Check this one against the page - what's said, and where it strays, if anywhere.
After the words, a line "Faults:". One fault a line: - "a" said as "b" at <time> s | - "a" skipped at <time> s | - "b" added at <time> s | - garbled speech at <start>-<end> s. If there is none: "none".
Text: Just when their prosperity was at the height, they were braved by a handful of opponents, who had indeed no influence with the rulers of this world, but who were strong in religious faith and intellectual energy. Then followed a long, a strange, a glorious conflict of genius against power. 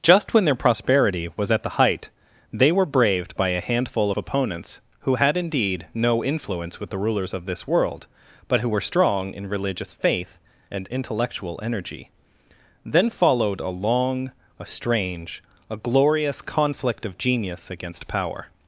Just when their prosperity was at the height, they were braved by a handful of opponents, who had indeed no influence with the rulers of this world, but who were strong in religious faith and intellectual energy. Then followed a long, a strange, a glorious conflict of genius against power.
Faults:
none